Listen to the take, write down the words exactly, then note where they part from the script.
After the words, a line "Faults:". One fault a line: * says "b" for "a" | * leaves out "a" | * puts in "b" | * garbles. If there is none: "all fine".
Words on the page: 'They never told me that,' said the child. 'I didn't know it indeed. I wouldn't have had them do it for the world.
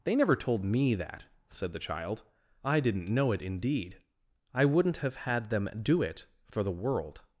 'They never told me that,' said the child. 'I didn't know it indeed. I wouldn't have had them do it for the world.
Faults:
all fine